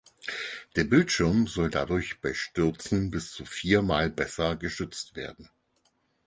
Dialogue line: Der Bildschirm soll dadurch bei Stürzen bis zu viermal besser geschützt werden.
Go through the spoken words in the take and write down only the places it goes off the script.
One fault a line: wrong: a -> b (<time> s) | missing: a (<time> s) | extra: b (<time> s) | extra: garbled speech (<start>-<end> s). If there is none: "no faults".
no faults